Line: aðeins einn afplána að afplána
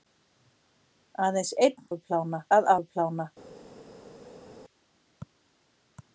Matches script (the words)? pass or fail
pass